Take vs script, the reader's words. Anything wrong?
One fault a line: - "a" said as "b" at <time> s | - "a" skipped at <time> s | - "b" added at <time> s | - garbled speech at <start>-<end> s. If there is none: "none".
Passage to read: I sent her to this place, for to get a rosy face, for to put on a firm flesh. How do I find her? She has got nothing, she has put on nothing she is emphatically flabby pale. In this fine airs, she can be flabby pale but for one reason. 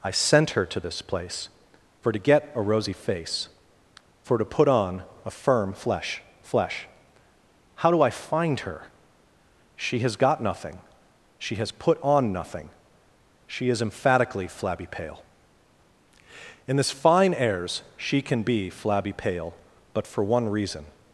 - "flesh" added at 6.4 s